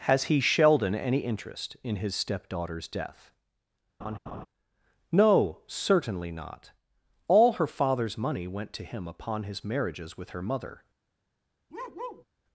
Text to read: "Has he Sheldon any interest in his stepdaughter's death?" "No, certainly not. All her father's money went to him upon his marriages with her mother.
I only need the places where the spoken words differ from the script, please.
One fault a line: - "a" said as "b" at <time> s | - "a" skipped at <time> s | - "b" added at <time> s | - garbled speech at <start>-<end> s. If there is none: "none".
none